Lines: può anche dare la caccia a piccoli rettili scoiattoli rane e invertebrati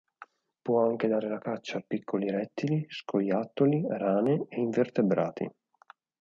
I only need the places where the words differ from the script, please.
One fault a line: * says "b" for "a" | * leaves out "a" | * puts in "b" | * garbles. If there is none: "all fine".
all fine